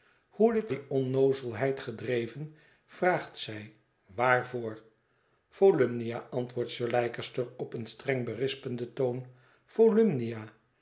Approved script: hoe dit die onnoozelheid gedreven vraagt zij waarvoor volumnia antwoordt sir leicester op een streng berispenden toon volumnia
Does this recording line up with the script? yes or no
yes